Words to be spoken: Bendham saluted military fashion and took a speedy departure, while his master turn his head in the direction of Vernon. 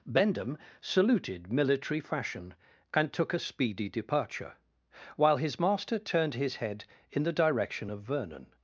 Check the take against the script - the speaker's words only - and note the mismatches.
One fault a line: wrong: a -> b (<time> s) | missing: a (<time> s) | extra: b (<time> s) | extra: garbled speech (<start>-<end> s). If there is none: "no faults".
wrong: turn -> turned (6.0 s)